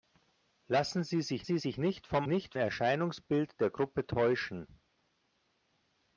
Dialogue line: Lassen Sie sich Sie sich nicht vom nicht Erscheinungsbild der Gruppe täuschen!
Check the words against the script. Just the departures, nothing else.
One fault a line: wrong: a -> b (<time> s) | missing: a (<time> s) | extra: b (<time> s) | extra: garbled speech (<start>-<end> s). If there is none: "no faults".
no faults